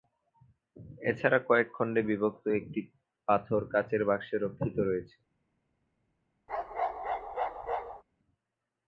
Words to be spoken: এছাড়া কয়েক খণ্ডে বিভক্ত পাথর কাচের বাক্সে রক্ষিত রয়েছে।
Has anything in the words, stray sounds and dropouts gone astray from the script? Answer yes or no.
yes